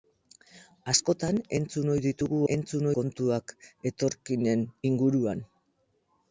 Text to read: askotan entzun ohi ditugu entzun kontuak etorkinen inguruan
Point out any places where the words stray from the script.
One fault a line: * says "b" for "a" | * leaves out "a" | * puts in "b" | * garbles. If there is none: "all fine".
all fine